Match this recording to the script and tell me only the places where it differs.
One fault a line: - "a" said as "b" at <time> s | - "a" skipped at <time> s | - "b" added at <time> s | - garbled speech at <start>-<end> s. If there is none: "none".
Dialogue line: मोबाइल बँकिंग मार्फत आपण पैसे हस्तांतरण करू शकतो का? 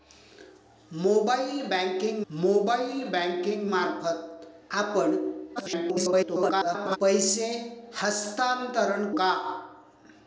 - "मोबाइल बँकिंग" added at 2.3 s
- garbled speech at 5.6-7.0 s
- "करू शकतो" skipped at 9.1 s